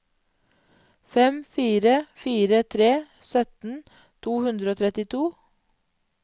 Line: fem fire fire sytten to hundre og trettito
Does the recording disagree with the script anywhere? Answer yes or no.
yes